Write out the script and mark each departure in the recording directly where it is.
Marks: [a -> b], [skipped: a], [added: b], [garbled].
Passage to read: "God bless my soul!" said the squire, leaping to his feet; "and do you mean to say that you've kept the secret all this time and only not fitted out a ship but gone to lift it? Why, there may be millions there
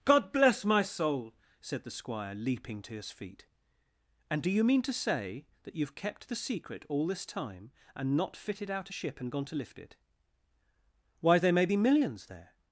"God bless my soul!" said the squire, leaping to his feet; "and do you mean to say that you've kept the secret all this time and [skipped: only] not fitted out a ship [but -> and] gone to lift it? Why, there may be millions there